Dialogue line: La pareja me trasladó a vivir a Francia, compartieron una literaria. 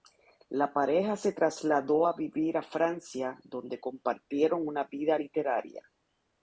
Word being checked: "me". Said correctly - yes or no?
no